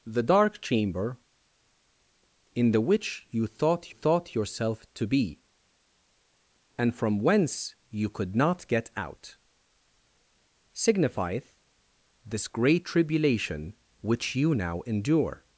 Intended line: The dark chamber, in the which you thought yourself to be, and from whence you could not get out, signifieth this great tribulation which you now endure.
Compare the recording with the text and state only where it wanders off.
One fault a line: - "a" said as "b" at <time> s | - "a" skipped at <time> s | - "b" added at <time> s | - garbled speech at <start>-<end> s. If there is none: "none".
- "thought" added at 3.9 s